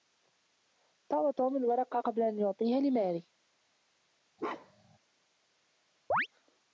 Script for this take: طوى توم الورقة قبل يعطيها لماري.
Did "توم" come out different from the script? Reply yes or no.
no